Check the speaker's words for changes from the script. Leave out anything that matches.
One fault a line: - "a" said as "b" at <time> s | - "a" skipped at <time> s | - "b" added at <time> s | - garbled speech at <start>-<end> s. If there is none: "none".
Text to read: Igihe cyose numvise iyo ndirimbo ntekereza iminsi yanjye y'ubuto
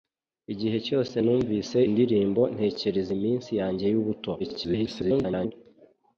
- "iyo" skipped at 1.8 s
- garbled speech at 4.4-5.5 s